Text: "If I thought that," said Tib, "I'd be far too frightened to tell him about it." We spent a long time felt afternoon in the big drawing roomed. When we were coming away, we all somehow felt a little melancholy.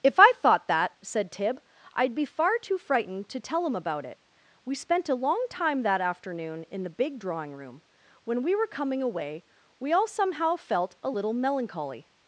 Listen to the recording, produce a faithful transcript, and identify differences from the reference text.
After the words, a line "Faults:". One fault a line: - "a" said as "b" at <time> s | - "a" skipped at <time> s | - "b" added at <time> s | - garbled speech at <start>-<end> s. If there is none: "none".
"If I thought that," said Tib, "I'd be far too frightened to tell him about it." We spent a long time that afternoon in the big drawing room. When we were coming away, we all somehow felt a little melancholy.
Faults:
- "felt" said as "that" at 5.8 s
- "roomed" said as "room" at 7.5 s